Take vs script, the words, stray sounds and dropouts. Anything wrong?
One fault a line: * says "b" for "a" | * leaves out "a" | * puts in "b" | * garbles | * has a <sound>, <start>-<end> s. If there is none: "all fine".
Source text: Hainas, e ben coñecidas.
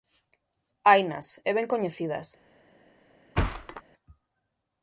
* has a thud, 3.4-3.8 s